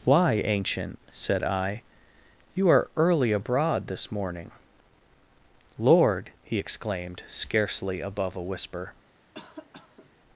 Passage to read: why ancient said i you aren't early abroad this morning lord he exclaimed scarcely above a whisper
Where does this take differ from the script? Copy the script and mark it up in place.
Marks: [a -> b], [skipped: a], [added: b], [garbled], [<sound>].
why ancient said i you [aren't -> are] early abroad this morning lord he exclaimed scarcely above a whisper [cough]